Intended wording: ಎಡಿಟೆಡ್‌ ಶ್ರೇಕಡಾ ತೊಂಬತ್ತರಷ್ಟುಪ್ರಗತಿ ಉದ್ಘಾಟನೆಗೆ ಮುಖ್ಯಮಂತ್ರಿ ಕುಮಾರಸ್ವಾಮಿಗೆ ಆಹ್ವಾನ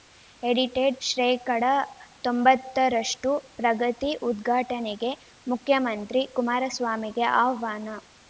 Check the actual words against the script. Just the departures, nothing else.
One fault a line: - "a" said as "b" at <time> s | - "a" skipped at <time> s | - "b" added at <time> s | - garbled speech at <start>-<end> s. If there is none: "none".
none